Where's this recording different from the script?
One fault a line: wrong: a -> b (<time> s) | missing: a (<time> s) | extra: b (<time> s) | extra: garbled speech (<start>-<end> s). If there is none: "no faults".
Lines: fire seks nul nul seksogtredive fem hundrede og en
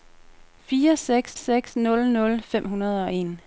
extra: seks (1.4 s)
missing: seksogtredive (2.4 s)